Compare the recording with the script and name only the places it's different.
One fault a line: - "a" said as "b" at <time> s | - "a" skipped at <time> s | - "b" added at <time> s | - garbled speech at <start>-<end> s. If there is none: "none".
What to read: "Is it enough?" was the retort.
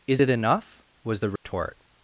none